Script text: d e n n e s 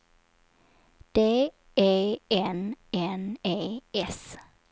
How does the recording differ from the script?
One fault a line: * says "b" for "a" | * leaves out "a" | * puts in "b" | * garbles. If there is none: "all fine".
all fine